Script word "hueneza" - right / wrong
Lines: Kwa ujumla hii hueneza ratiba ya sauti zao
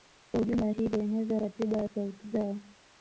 right